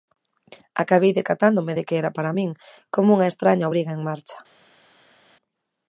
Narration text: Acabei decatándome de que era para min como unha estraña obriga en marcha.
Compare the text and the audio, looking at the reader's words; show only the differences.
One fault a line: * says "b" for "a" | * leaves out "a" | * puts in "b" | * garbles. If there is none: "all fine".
all fine